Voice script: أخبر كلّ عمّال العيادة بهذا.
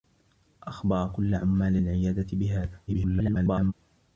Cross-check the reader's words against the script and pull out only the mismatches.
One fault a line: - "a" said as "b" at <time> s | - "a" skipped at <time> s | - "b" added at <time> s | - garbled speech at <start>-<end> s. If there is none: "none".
- garbled speech at 2.9-3.7 s